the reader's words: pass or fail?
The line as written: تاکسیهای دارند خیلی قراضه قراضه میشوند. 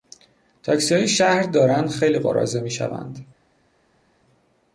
fail